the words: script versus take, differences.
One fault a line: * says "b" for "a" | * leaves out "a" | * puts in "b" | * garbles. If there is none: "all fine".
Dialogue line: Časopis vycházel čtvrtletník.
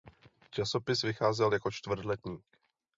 * puts in "jako"